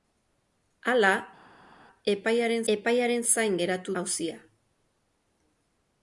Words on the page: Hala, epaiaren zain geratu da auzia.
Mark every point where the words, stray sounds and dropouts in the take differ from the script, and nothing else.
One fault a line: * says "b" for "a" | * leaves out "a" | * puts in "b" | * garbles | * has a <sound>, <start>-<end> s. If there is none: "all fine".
* puts in "epaiaren"
* leaves out "da"